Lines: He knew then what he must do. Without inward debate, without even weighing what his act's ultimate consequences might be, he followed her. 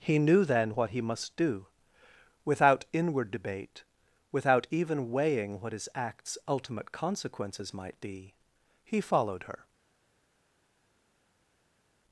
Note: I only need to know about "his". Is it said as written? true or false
true